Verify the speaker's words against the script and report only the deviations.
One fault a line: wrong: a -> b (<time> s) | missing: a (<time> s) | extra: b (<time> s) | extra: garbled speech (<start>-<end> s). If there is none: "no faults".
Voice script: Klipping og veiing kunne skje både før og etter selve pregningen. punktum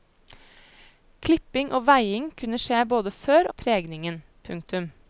missing: og etter selve (3.5 s)